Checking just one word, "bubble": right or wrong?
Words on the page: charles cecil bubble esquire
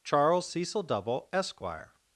wrong